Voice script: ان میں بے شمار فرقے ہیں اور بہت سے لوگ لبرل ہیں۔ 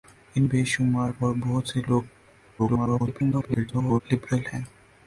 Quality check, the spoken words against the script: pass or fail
fail